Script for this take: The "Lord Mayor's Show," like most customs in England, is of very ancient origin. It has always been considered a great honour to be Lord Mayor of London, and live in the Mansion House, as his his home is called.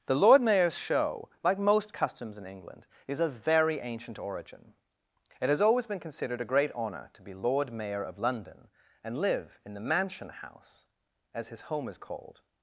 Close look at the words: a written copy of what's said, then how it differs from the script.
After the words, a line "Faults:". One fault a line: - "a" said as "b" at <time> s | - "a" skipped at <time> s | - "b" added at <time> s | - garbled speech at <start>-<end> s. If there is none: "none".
The "Lord Mayor's Show," like most customs in England, is of very ancient origin. It has always been considered a great honour to be Lord Mayor of London, and live in the Mansion House, as his home is called.
Faults:
- "his" skipped at 11.6 s